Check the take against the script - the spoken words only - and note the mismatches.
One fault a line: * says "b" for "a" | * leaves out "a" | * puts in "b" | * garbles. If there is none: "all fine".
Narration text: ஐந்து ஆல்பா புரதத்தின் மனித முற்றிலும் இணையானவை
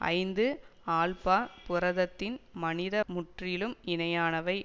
all fine